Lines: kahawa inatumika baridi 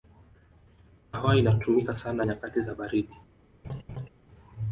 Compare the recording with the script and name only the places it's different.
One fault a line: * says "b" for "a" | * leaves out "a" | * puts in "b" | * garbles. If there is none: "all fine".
* puts in "sana nyakati za"